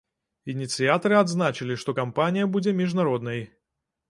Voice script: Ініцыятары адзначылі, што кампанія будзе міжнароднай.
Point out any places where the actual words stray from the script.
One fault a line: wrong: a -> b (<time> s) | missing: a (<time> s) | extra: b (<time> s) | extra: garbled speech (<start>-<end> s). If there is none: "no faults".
no faults